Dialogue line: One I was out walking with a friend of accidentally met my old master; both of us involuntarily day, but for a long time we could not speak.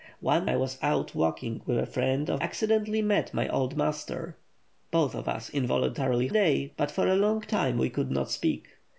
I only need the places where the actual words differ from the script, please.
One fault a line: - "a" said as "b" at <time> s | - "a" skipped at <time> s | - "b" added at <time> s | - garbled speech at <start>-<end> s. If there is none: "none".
none